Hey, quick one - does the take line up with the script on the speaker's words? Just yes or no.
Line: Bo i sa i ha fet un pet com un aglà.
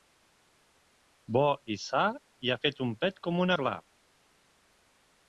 yes